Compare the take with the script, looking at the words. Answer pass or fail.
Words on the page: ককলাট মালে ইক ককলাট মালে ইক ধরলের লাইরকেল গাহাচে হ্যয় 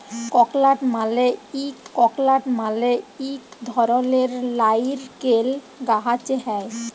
pass